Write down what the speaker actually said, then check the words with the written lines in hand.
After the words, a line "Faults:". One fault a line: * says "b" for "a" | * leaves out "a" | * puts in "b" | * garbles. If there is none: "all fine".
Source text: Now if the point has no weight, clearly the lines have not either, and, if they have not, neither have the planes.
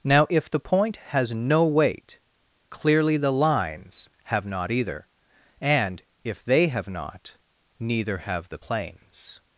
Now if the point has no weight, clearly the lines have not either, and, if they have not, neither have the planes.
Faults:
all fine